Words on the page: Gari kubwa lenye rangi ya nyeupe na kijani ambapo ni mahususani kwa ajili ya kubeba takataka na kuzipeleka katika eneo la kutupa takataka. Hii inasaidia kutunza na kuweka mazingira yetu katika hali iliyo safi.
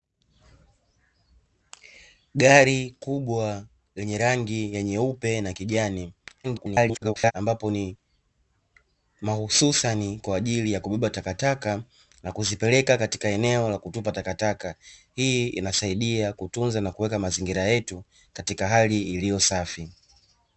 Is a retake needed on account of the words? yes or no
yes